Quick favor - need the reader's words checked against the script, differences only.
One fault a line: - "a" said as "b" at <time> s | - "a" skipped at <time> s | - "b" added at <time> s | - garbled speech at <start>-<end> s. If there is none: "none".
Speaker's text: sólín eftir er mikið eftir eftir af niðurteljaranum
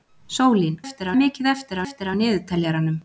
none